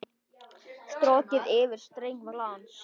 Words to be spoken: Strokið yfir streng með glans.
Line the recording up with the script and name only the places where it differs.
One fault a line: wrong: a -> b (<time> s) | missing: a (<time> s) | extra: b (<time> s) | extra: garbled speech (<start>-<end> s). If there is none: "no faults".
missing: með (2.3 s)